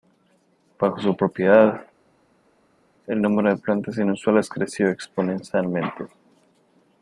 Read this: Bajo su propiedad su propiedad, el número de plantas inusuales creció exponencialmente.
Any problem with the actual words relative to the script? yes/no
yes